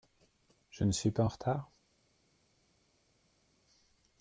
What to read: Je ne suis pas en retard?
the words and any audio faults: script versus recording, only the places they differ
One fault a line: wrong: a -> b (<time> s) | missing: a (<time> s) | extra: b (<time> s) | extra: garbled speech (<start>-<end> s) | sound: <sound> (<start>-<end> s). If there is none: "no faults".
no faults